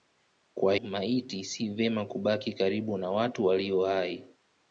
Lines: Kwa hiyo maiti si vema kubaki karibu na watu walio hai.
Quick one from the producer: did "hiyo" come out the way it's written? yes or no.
no